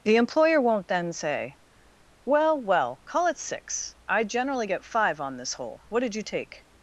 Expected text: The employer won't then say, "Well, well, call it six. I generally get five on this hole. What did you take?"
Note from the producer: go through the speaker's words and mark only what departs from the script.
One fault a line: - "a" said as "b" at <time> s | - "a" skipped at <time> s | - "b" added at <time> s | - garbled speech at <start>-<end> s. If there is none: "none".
none